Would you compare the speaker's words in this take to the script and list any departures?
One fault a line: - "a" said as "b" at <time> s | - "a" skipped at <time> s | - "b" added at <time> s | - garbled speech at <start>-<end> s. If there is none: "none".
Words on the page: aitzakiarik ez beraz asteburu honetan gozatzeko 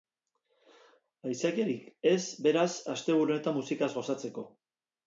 - "musikaz" added at 3.6 s